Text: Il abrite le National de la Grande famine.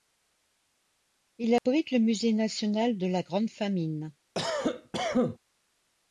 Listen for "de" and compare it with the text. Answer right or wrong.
right